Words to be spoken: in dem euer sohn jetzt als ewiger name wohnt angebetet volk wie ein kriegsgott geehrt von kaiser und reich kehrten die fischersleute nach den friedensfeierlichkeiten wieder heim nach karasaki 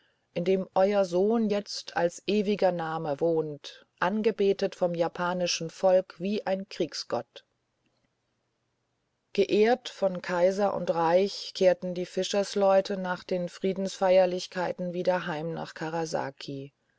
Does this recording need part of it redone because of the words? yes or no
yes